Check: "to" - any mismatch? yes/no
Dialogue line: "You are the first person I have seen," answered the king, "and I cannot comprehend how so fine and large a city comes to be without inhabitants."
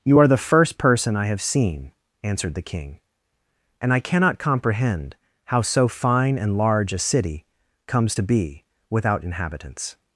no